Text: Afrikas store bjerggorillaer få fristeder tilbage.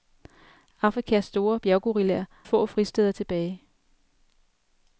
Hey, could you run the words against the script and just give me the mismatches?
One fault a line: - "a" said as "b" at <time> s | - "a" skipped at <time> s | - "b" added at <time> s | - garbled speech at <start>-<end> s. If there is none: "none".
none